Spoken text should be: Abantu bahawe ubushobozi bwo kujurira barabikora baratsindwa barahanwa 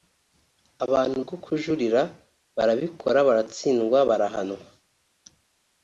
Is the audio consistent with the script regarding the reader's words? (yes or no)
no